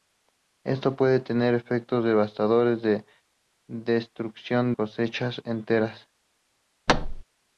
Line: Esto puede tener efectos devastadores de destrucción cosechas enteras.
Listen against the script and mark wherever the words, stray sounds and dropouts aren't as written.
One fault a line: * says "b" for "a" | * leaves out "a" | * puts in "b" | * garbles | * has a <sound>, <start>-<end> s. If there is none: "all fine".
* has a thud, 6.9-7.2 s